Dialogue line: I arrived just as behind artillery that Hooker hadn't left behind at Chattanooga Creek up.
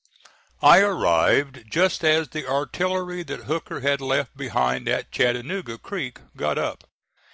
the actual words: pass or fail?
fail